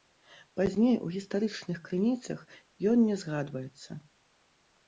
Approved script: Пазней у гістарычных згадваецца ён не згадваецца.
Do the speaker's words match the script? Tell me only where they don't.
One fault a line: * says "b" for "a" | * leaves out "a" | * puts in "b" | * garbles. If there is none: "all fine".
* says "крыніцах" for "згадваецца"